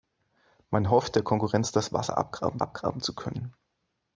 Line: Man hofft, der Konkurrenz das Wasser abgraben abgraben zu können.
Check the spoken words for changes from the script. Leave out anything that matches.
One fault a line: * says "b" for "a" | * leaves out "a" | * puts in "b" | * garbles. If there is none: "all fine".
all fine